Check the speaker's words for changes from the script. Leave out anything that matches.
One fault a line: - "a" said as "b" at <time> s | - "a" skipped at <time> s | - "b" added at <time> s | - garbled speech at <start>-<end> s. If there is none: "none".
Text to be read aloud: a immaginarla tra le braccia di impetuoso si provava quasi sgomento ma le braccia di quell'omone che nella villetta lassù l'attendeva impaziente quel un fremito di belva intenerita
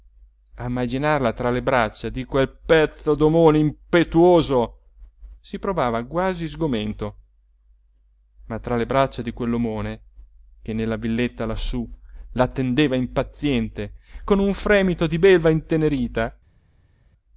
- "quel pezzo d'omone" added at 2.2 s
- "tra" added at 8.6 s
- "quel" said as "con" at 14.2 s